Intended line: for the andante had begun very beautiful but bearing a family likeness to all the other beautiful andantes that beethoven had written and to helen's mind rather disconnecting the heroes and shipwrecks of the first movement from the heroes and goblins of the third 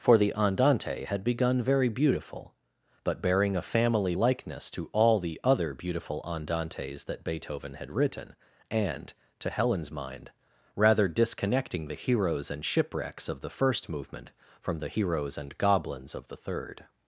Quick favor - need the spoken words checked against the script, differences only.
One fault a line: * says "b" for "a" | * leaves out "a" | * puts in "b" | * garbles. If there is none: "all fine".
all fine